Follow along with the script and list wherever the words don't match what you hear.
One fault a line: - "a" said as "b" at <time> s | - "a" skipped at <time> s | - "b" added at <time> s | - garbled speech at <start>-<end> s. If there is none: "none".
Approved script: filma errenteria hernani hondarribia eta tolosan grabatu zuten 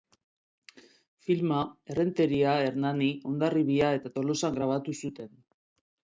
none